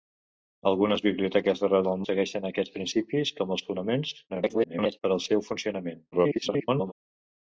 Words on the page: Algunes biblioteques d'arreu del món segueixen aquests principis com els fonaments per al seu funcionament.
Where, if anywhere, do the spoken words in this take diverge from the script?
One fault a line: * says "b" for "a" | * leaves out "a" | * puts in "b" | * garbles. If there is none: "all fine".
* leaves out "món"
* garbles
* garbles